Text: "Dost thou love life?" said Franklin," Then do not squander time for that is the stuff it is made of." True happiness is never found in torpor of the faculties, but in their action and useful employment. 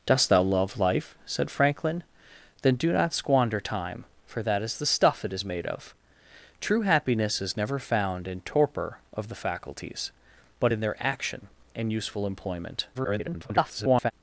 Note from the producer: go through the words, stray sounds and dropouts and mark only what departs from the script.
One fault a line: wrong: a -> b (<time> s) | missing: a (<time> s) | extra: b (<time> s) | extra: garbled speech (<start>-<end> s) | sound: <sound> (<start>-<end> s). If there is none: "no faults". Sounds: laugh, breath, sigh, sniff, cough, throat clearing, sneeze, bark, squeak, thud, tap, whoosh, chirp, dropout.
extra: garbled speech (12.9-14.1 s)